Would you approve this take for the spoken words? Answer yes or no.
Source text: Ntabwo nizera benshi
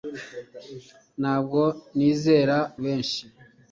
yes